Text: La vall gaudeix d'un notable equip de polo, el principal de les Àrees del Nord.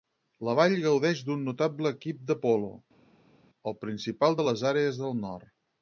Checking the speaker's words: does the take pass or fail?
pass